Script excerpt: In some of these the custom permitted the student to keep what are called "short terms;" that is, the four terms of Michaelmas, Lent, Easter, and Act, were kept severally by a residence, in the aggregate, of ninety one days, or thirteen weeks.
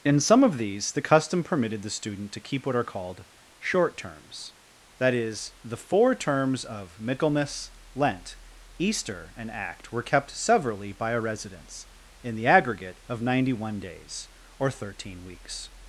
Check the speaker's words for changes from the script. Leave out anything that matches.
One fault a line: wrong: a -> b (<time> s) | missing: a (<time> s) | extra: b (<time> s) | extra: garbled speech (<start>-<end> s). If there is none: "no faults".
no faults